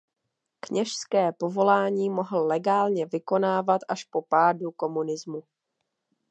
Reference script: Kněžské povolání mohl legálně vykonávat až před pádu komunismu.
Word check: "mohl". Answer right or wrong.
right